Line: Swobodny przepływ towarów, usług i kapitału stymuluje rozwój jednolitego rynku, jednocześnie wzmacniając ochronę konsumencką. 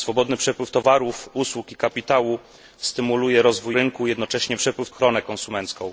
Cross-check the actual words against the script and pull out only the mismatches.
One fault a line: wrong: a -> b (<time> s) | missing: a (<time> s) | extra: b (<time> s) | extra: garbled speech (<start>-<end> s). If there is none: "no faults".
missing: jednolitego (3.8 s)
wrong: wzmacniając -> przepływ (4.6 s)